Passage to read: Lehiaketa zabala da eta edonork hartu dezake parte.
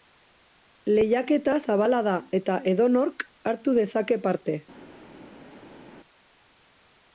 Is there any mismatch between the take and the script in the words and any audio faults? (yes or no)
no